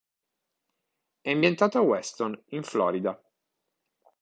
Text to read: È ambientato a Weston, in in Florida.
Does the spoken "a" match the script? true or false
true